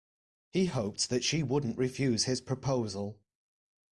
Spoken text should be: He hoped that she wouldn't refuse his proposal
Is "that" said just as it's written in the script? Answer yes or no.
yes